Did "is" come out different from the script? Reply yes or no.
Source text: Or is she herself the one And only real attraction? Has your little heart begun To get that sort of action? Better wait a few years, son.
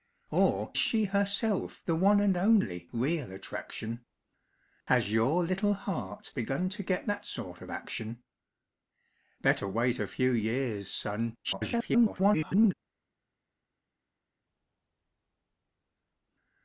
yes